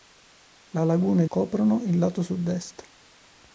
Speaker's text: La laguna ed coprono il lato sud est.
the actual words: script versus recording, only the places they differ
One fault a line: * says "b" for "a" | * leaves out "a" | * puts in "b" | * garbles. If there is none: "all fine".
all fine